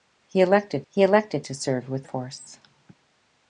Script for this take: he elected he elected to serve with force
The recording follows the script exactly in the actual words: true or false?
true